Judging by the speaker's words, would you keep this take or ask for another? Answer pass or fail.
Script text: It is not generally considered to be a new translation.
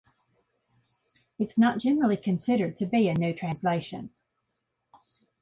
pass